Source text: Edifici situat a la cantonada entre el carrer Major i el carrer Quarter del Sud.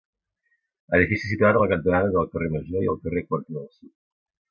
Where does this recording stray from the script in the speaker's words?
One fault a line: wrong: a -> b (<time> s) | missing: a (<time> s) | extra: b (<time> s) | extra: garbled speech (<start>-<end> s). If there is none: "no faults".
no faults